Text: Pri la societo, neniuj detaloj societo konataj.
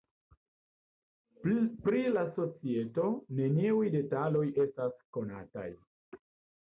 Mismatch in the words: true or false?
true